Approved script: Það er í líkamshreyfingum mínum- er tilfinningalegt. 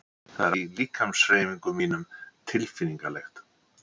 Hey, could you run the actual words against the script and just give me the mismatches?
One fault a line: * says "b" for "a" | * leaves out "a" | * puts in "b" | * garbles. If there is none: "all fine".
all fine